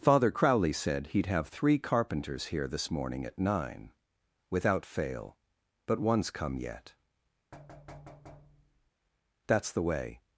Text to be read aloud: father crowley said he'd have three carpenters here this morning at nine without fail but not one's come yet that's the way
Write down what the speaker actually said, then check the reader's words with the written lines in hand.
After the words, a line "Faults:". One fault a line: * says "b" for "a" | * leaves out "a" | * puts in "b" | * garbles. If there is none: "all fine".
father crowley said he'd have three carpenters here this morning at nine without fail but one's come yet that's the way
Faults:
* leaves out "not"